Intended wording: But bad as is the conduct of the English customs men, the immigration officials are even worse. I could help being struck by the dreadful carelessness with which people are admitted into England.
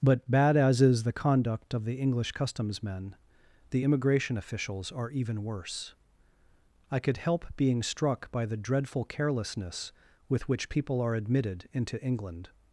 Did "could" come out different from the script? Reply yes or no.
no